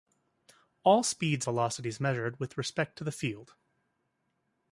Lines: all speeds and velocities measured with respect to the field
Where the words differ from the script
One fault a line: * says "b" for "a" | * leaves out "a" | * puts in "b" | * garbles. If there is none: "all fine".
* leaves out "and"